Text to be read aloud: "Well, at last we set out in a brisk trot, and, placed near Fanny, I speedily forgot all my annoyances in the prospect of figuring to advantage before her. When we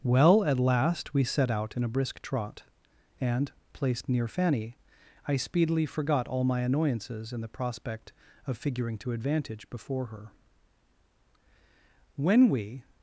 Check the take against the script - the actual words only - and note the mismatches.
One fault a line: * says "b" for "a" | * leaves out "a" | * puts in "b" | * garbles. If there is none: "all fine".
all fine